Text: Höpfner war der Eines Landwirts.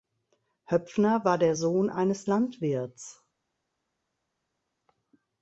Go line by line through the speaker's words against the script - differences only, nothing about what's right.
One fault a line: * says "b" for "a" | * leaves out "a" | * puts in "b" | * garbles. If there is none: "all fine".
* puts in "Sohn"